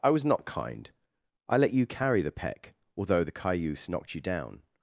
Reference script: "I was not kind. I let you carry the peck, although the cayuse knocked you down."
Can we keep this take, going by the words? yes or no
yes